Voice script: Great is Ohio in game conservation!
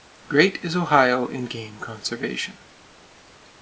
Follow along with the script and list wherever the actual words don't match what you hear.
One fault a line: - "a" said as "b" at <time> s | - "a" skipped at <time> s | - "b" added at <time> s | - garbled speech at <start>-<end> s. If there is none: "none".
none